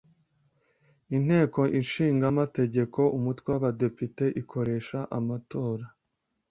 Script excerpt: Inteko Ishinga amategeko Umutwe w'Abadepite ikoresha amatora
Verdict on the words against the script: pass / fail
pass